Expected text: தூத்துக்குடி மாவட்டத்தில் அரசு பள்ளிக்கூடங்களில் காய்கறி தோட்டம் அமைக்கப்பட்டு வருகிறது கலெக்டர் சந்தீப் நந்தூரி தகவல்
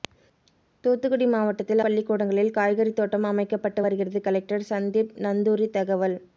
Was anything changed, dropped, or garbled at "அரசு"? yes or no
yes